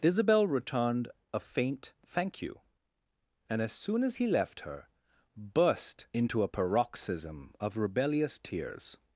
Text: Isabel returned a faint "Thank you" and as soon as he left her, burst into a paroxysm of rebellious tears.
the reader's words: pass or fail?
pass